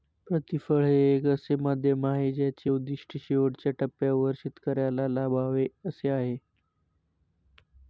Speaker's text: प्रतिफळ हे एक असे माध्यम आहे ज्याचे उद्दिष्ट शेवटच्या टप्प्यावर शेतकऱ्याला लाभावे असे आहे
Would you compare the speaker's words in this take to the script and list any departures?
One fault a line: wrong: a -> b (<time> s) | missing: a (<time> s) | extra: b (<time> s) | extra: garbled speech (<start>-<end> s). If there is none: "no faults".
no faults